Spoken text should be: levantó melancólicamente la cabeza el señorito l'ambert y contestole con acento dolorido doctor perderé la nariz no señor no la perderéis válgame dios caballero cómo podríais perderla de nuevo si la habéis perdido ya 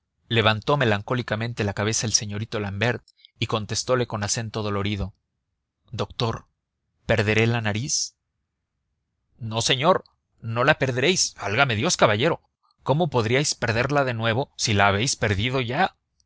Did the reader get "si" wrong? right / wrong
right